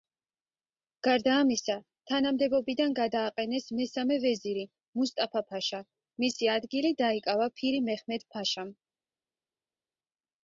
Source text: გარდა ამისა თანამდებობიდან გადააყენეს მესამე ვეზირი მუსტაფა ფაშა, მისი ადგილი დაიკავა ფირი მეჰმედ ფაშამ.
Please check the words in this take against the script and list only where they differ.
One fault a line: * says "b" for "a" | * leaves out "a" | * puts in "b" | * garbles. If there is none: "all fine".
all fine